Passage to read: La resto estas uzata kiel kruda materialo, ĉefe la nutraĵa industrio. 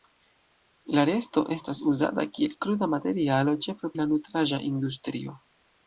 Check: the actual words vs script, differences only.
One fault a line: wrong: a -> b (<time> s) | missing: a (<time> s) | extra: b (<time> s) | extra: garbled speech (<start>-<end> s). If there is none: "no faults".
no faults